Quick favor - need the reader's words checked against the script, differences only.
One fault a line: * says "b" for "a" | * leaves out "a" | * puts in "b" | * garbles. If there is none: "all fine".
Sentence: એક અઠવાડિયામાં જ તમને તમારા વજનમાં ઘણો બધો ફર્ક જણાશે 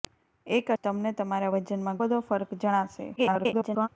* leaves out "અઠવાડિયામાં"
* leaves out "ઘણો"
* garbles